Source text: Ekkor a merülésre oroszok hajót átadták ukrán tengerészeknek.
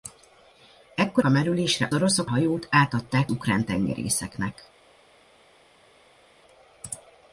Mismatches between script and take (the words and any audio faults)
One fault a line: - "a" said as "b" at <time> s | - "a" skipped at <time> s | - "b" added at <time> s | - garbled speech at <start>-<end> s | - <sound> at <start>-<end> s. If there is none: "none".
none